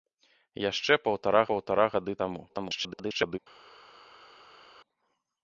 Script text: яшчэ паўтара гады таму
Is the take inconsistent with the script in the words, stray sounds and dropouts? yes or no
yes